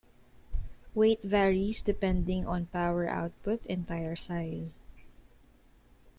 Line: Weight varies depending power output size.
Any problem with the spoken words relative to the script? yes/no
yes